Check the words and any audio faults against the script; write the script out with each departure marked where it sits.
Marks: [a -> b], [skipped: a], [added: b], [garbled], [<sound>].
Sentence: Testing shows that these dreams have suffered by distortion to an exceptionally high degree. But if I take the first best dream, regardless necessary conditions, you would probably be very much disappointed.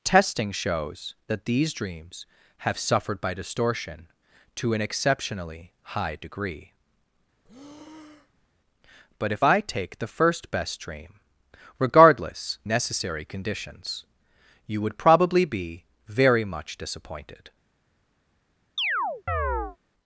Testing shows that these dreams have suffered by distortion to an exceptionally high degree. [breath] But if I take the first best dream, regardless necessary conditions, you would probably be very much disappointed. [chirp]